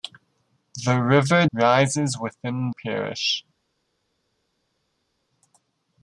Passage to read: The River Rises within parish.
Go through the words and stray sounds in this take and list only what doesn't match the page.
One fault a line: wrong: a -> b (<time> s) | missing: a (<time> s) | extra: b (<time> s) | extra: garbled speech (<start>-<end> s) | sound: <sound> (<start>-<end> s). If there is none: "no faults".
no faults